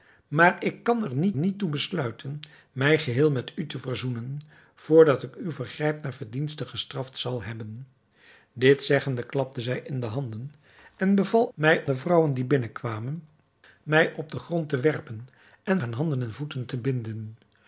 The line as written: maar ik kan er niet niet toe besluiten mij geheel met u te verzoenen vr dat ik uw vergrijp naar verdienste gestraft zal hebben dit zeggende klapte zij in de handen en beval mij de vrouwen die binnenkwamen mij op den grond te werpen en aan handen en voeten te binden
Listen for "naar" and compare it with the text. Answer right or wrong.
right